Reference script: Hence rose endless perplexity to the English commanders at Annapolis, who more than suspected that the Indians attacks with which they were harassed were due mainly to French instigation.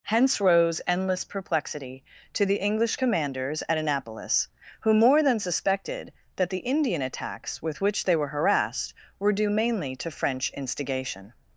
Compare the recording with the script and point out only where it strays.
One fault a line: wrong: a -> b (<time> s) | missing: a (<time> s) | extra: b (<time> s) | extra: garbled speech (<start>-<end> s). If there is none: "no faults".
wrong: Indians -> Indian (6.7 s)